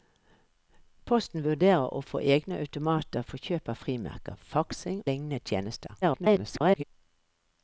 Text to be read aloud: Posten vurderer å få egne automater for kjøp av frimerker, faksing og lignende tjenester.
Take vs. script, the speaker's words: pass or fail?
fail